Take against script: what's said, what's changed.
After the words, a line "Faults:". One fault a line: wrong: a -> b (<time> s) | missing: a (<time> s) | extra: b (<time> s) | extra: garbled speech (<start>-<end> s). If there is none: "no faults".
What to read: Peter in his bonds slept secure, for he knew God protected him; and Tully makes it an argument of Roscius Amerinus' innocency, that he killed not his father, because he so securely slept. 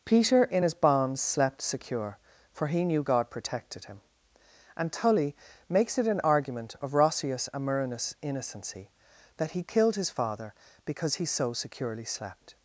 Peter in his bonds slept secure, for he knew God protected him; and Tully makes it an argument of Roscius Amerinus' innocency, that he killed his father, because he so securely slept.
Faults:
missing: not (10.0 s)